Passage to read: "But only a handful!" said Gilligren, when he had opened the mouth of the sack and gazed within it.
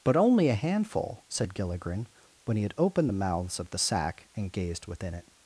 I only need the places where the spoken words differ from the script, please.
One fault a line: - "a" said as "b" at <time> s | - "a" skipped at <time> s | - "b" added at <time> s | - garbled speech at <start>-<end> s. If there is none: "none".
- "mouth" said as "mouths" at 3.1 s